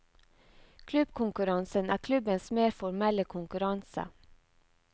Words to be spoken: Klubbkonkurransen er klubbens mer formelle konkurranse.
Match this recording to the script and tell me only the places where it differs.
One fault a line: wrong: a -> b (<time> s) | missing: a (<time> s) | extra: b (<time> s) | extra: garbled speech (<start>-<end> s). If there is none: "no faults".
no faults